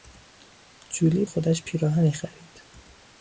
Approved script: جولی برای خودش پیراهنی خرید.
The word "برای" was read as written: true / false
false